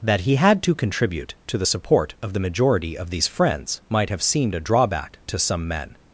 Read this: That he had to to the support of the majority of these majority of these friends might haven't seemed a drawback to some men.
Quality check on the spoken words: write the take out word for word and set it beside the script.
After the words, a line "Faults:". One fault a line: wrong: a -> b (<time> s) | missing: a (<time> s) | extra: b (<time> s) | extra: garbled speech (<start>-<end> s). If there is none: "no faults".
That he had to contribute to the support of the majority of these friends might have seemed a drawback to some men.
Faults:
extra: contribute (0.7 s)
missing: majority of these (3.3 s)
wrong: haven't -> have (4.1 s)